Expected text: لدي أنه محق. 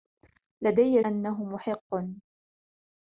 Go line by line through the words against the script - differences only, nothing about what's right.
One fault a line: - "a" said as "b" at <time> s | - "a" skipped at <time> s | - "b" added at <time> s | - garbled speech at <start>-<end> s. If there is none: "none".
none